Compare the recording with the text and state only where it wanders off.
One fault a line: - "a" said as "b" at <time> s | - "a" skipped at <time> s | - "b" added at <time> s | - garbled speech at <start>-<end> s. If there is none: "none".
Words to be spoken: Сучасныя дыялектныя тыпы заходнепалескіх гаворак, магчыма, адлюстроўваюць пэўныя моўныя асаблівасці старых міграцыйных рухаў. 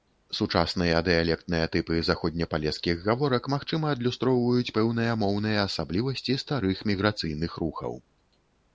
none